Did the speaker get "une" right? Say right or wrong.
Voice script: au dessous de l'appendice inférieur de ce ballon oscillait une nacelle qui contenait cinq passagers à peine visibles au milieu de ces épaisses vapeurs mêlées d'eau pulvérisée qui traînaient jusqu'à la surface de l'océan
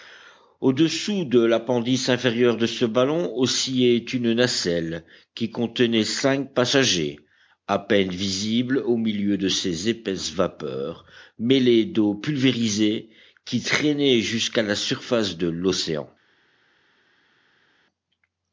right